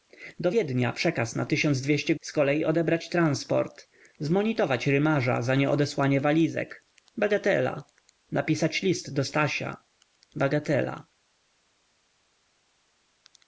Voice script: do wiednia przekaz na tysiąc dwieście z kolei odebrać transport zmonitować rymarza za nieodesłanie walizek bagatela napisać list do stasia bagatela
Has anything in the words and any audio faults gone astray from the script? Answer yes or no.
no